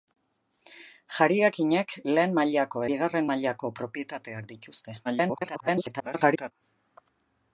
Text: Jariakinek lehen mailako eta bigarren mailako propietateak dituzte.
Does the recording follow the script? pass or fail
fail